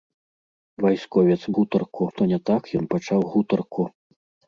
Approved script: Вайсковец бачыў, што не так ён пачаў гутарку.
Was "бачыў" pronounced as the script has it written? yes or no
no